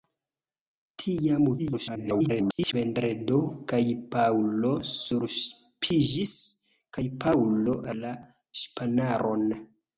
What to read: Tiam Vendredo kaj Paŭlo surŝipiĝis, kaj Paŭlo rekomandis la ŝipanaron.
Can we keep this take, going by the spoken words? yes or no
no